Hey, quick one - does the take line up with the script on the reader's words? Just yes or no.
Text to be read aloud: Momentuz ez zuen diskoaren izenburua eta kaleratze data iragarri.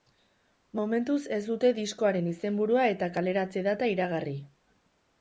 no